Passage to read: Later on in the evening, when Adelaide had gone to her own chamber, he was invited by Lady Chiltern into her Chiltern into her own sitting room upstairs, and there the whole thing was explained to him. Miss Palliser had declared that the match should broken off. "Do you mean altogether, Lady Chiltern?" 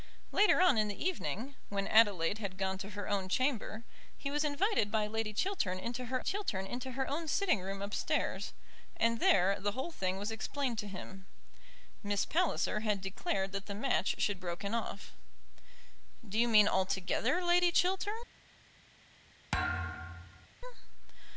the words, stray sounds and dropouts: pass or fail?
fail